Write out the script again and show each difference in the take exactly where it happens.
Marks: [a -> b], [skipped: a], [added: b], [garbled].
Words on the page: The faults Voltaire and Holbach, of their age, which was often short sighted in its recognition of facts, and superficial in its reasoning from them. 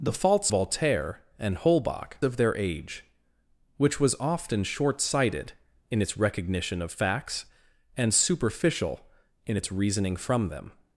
The faults Voltaire and Holbach, of their age, which was often short sighted in its recognition of facts, and superficial in its reasoning from them.